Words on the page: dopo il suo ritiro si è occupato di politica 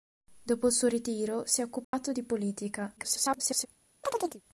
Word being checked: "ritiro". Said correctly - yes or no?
yes